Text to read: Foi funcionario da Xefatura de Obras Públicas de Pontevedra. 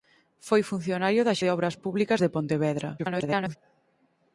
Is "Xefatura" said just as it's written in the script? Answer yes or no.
no